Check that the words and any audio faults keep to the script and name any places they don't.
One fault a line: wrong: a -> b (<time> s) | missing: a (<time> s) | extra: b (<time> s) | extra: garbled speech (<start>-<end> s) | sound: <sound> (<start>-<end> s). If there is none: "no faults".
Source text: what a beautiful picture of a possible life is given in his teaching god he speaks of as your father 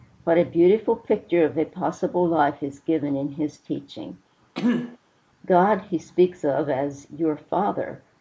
sound: throat clearing (4.5-5.0 s)